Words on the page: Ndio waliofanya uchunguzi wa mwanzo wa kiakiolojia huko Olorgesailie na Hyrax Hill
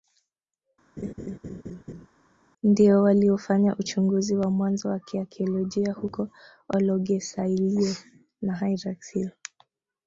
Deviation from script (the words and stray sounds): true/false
true